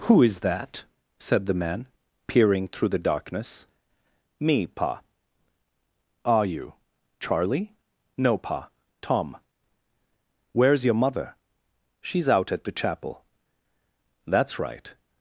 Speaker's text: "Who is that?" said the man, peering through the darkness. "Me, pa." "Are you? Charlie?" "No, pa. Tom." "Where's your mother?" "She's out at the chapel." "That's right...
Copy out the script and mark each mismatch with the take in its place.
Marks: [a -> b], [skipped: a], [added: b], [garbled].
"Who is that?" said the man, peering through the darkness. "Me, pa." "Are you? Charlie?" "No, pa. Tom." "Where's your mother?" "She's out at the chapel." "That's right...